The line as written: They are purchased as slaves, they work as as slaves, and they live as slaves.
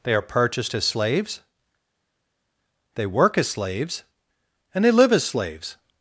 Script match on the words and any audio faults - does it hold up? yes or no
no